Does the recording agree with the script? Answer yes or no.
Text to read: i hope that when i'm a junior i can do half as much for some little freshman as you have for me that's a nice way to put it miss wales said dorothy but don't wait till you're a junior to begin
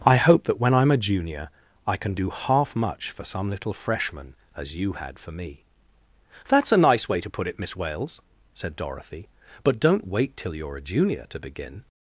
no